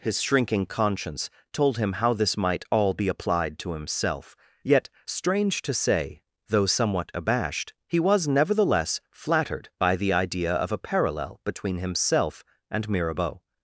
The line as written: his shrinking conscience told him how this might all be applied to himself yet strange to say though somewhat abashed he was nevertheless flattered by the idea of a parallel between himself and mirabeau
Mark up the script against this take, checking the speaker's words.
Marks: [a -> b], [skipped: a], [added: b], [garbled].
his shrinking conscience told him how this might all be applied to himself yet strange to say though somewhat abashed he was nevertheless flattered by the idea of a parallel between himself and mirabeau